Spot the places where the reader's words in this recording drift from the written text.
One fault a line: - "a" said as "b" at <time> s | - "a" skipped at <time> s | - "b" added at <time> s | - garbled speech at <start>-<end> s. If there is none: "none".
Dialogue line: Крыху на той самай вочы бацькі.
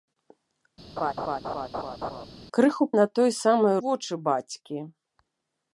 none